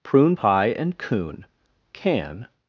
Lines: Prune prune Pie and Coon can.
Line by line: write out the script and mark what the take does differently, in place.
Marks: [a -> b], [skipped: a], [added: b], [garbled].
Prune [skipped: prune] Pie and Coon can.